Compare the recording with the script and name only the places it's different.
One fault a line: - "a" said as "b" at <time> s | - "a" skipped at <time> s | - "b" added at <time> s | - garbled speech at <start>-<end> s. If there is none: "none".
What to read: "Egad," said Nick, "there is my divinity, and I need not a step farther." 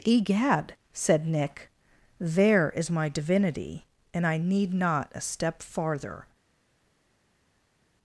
none